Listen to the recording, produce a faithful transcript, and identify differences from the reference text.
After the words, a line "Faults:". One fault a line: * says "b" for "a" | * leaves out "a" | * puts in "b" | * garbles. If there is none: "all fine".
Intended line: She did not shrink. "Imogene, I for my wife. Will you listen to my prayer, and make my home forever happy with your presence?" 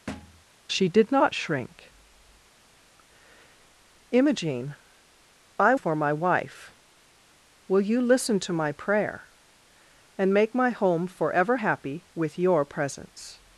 She did not shrink. "Imogene, I for my wife. Will you listen to my prayer, and make my home forever happy with your presence?"
Faults:
all fine